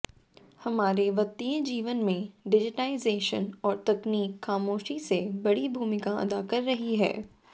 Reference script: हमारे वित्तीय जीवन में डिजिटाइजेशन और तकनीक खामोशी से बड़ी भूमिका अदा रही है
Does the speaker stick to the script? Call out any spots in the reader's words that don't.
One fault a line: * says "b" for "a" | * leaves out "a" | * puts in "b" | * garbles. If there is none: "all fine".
* puts in "कर"